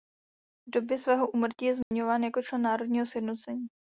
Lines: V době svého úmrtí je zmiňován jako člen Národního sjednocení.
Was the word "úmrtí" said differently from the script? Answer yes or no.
no